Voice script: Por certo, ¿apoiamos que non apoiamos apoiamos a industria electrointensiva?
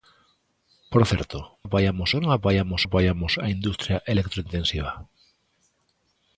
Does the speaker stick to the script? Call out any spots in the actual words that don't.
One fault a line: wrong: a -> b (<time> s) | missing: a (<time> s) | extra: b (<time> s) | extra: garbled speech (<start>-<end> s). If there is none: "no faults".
no faults